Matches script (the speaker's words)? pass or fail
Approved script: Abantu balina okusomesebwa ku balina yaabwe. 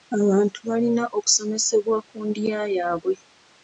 fail